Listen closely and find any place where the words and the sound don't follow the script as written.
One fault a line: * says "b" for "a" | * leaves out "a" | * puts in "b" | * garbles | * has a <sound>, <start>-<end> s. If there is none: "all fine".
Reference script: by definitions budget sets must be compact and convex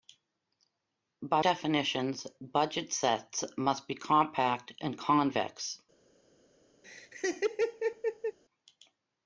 * has a laugh, 6.8-8.4 s